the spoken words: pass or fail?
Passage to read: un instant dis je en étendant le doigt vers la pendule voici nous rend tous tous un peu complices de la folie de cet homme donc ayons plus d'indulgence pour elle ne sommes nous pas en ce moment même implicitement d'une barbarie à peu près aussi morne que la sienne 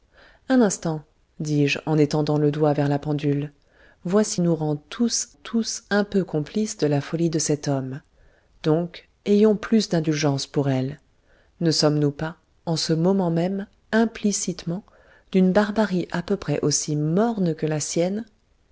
pass